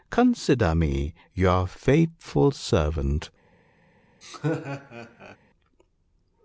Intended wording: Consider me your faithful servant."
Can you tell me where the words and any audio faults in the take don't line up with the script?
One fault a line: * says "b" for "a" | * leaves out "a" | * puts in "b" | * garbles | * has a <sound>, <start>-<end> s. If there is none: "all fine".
* has a laugh, 4.2-5.4 s